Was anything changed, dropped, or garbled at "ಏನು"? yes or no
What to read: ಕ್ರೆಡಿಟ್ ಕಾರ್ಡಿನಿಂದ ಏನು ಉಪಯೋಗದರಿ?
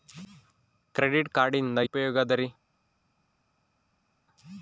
yes